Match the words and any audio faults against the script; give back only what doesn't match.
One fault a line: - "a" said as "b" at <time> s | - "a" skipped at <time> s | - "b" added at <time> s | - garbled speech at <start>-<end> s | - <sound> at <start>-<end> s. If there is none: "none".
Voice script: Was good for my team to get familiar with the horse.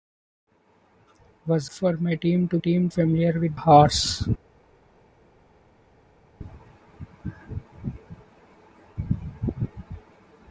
- "good" skipped at 1.7 s
- "get" said as "team" at 2.6 s
- "the" skipped at 3.5 s